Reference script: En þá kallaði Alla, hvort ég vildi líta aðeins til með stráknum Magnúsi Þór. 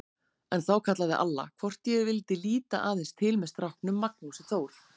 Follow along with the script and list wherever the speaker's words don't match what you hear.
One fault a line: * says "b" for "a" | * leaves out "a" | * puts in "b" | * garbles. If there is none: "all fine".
all fine